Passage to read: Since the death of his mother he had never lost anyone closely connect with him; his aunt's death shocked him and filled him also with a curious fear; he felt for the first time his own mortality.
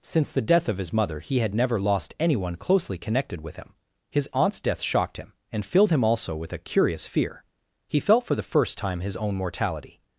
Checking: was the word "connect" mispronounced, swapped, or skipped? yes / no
yes